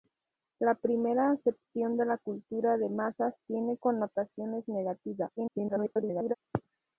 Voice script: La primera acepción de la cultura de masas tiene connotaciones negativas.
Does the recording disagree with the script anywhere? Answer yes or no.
yes